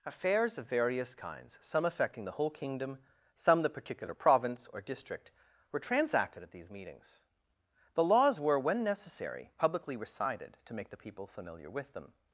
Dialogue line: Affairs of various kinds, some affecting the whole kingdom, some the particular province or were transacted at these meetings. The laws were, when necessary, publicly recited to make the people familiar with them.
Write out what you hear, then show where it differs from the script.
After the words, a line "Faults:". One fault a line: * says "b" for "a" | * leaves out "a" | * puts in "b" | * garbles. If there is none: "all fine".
Affairs of various kinds, some affecting the whole kingdom, some the particular province or district, were transacted at these meetings. The laws were, when necessary, publicly recited to make the people familiar with them.
Faults:
* puts in "district"